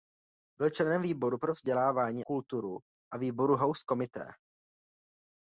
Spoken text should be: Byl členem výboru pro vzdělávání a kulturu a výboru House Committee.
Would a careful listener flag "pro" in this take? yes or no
no